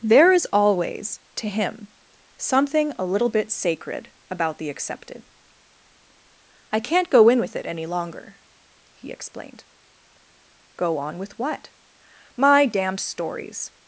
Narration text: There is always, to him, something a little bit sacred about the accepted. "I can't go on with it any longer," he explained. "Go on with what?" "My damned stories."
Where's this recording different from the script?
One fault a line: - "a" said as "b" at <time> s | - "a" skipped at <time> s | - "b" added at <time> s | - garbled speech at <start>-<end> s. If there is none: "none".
- "on" said as "in" at 7.3 s